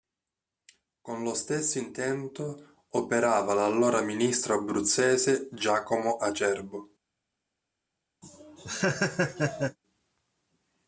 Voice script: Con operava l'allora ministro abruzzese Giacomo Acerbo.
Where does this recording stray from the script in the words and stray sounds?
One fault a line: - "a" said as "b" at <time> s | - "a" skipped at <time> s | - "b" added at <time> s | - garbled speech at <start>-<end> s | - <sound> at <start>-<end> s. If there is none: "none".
- "lo stesso intento" added at 1.2 s
- laugh at 8.2-9.8 s